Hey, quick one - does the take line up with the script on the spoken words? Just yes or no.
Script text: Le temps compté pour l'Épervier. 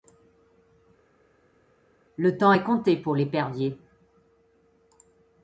no